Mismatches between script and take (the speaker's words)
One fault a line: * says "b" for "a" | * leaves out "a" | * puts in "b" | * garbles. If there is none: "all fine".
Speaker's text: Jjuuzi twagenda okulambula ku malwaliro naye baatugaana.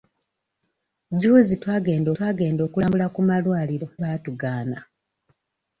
* puts in "twagenda"
* leaves out "naye"